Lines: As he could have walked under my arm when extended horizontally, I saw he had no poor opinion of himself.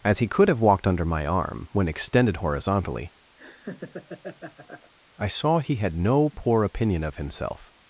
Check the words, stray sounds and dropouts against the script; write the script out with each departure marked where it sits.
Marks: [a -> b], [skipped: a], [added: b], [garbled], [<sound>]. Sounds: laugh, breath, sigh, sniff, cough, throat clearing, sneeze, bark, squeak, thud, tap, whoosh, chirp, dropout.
As he could have walked under my arm when extended horizontally, [laugh] I saw he had no poor opinion of himself.